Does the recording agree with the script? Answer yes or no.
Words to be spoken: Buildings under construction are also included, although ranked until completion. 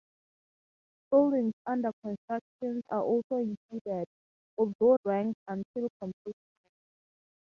yes